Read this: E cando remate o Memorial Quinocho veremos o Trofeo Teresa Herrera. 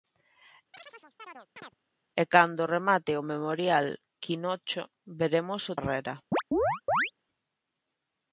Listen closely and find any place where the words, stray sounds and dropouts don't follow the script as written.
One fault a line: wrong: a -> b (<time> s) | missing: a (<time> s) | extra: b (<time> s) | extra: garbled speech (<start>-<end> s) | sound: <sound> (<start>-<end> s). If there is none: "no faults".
sound: chirp (0.7-1.7 s)
missing: Trofeo Teresa (5.7 s)
sound: chirp (6.3-7.1 s)